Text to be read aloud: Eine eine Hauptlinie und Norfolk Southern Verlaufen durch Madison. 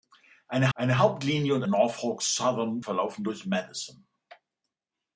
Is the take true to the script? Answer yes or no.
yes